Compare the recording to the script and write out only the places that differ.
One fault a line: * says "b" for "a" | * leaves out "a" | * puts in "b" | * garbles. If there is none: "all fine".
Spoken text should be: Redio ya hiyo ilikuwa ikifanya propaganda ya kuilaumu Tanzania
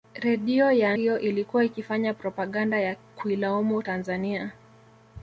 all fine